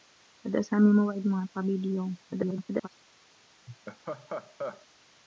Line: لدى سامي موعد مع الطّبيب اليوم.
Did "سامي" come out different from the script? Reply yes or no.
no